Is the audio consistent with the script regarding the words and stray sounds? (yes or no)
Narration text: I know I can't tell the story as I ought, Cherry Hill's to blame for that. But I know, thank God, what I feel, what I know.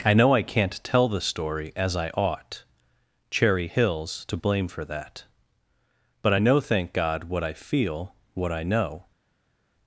yes